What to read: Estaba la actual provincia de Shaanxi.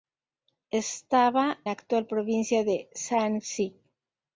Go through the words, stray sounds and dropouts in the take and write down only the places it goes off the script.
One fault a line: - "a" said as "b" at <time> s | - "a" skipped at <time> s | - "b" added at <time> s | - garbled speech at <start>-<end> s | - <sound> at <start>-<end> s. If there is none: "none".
none